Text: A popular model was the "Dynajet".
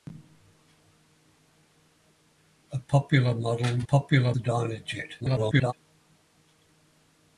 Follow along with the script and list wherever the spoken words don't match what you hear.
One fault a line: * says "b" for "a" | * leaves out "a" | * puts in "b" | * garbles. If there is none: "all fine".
* says "popular" for "was"
* garbles